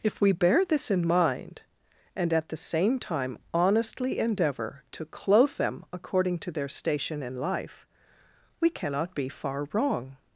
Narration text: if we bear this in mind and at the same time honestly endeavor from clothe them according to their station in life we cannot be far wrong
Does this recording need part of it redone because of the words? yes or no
yes